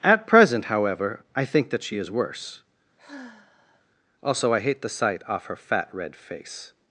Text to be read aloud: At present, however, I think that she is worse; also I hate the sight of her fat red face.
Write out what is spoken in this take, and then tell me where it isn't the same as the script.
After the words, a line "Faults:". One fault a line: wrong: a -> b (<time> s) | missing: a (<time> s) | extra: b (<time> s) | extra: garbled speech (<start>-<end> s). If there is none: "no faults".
At present, however, I think that she is worse; also I hate the sight off her fat red face.
Faults:
wrong: of -> off (5.3 s)